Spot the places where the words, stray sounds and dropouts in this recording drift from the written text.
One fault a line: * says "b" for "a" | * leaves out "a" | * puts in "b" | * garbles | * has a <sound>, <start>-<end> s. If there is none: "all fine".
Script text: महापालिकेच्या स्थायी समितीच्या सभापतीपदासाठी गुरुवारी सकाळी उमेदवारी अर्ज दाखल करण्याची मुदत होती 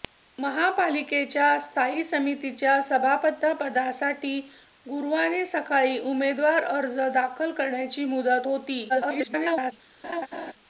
* garbles
* has a laugh, 10.0-10.5 s